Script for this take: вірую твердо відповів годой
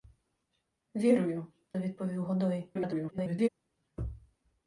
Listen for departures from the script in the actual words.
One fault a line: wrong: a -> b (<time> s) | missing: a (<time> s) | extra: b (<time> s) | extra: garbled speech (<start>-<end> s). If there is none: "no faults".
missing: твердо (1.5 s)
extra: garbled speech (2.7-3.5 s)